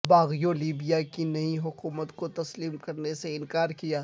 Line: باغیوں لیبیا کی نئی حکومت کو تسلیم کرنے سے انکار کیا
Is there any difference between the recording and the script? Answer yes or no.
no